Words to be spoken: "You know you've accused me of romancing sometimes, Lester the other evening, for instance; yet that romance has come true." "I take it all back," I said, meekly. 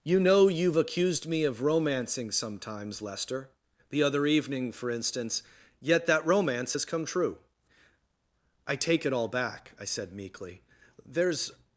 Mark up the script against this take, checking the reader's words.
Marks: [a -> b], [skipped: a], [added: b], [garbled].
"You know you've accused me of romancing sometimes, Lester the other evening, for instance; yet that romance has come true." "I take it all back," I said, meekly. [added: There's]